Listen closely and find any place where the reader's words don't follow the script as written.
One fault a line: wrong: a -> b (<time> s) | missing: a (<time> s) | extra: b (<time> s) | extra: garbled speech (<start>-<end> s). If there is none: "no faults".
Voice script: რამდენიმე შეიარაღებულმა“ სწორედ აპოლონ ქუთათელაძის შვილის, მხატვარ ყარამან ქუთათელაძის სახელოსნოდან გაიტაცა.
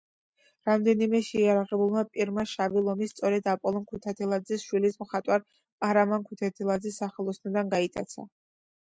extra: პირმა შავი ლომი (2.1 s)